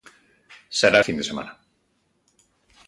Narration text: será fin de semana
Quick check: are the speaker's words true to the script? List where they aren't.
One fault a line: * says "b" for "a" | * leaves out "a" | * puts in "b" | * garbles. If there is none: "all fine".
all fine